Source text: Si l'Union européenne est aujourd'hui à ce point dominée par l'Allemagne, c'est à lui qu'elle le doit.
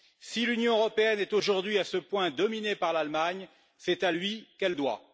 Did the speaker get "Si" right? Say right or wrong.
right